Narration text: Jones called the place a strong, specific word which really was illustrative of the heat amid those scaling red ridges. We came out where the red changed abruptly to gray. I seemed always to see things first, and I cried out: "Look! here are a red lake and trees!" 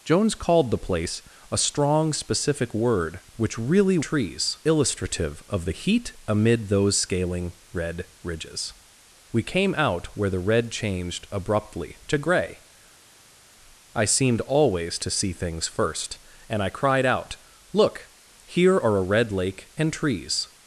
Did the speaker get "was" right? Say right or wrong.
wrong